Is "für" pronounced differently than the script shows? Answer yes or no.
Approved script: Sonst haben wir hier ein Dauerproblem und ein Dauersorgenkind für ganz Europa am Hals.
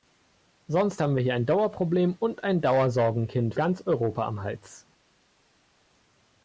yes